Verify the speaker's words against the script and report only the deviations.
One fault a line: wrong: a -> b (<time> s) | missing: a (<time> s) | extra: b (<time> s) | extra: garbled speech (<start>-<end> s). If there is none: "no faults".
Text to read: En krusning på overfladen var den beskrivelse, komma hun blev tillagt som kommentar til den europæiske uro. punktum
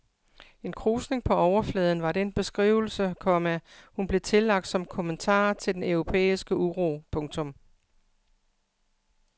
no faults